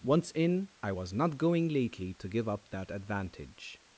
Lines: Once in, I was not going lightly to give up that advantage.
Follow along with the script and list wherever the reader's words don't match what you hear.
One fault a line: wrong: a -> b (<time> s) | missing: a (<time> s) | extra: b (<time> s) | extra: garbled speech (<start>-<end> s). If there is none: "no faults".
wrong: lightly -> lately (1.7 s)